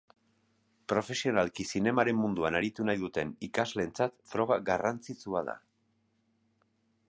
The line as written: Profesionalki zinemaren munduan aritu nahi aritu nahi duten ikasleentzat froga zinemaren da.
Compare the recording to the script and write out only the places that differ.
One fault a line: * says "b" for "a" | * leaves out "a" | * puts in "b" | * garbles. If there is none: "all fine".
* leaves out "aritu nahi"
* says "garrantzitsua" for "zinemaren"